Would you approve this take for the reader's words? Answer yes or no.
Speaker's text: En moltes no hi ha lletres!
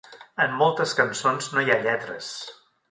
no